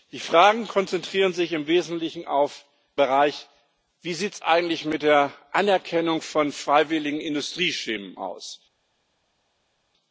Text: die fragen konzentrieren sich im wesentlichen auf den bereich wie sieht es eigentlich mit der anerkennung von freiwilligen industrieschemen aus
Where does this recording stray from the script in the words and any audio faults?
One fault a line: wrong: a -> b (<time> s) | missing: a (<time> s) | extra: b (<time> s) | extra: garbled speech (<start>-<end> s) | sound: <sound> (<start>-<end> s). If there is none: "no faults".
missing: den (2.6 s)